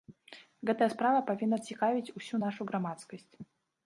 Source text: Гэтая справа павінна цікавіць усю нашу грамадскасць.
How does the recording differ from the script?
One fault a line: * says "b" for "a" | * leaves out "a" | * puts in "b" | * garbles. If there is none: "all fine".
all fine